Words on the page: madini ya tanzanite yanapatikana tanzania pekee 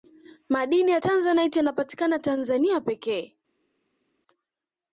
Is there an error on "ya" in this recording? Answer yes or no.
no